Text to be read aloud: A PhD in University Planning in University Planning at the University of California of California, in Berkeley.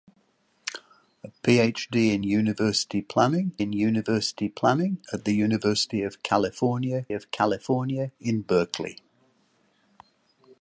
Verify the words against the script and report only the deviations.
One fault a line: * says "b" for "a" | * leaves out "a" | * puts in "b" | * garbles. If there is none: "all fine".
all fine